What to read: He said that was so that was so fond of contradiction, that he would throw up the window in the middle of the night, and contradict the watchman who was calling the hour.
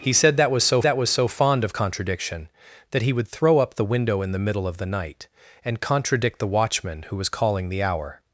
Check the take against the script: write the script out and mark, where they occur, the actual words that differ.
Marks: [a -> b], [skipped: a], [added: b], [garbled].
He said that was so that was so fond of contradiction, that he would throw up the window in the middle of the night, and contradict the watchman who was calling the hour.